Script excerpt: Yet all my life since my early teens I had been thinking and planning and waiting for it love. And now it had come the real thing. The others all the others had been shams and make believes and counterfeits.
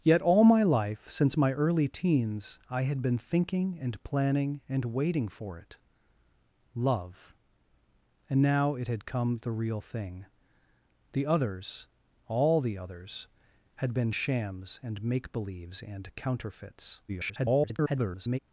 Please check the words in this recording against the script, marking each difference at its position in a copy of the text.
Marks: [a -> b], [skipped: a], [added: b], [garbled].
Yet all my life since my early teens I had been thinking and planning and waiting for it love. And now it had come the real thing. The others all the others had been shams and make believes and counterfeits. [garbled]